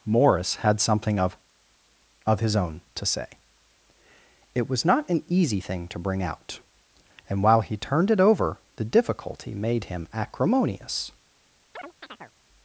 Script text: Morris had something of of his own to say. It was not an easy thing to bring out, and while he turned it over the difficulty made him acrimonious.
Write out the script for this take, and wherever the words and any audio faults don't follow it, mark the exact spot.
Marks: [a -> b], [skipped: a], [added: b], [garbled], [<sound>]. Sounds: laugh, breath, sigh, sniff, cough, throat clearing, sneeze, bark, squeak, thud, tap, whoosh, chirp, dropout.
Morris had something of of his own to say. It was not an easy thing to bring out, and while he turned it over the difficulty made him acrimonious. [chirp]